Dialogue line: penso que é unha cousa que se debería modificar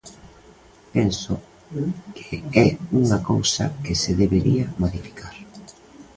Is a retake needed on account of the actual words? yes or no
no